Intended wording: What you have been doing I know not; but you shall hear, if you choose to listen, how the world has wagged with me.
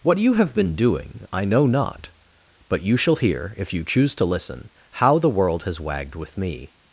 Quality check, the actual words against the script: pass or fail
pass